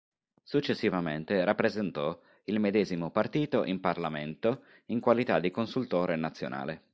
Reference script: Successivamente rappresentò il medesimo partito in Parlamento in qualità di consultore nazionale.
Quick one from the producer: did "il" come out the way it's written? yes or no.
yes